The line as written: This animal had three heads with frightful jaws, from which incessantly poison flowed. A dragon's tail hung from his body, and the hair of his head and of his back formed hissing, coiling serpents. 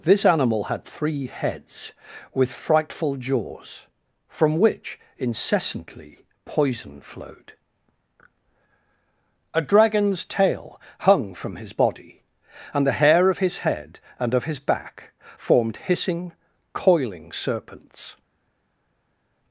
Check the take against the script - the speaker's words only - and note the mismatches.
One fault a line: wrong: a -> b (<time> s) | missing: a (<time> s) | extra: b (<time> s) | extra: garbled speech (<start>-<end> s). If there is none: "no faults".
no faults